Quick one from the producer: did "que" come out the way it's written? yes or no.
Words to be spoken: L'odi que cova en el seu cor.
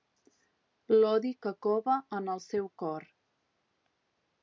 yes